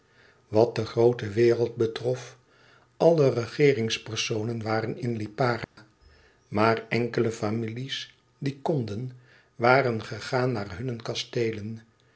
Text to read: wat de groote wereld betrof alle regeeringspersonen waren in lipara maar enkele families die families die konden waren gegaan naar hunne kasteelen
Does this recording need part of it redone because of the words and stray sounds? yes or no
yes